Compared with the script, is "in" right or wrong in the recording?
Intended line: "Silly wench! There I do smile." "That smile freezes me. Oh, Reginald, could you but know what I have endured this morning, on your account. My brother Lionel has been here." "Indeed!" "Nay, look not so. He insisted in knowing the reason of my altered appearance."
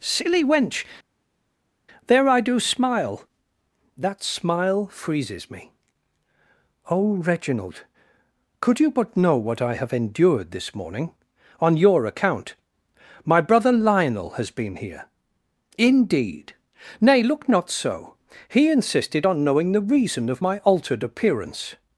wrong